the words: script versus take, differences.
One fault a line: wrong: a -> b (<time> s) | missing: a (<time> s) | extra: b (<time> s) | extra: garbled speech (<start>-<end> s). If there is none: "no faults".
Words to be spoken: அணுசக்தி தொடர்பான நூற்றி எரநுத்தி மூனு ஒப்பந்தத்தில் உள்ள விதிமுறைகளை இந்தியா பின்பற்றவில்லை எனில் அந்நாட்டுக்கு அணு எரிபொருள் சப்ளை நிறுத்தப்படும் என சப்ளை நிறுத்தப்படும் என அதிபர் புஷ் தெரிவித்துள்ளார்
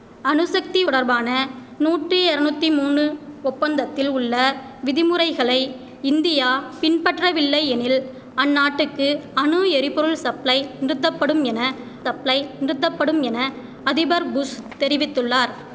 no faults